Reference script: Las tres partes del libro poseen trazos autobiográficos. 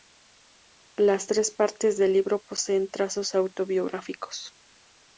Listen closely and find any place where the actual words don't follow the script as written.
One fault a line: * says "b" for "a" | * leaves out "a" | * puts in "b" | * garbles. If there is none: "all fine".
all fine